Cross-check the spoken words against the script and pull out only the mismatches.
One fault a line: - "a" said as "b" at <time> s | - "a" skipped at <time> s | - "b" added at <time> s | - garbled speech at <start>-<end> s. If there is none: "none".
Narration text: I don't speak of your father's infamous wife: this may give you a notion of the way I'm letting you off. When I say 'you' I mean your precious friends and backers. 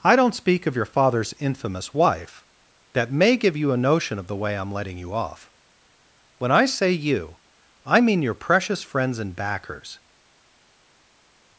- "this" said as "that" at 2.9 s